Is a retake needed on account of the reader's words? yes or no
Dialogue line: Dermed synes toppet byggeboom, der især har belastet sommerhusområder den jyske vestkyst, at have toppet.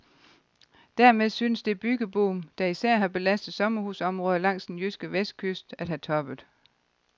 yes